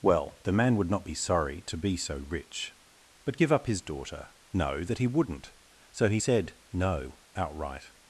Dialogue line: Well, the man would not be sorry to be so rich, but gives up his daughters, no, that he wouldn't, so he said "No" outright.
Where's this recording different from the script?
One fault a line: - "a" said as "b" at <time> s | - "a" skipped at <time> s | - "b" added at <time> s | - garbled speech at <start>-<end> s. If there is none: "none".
- "gives" said as "give" at 3.3 s
- "daughters" said as "daughter" at 3.8 s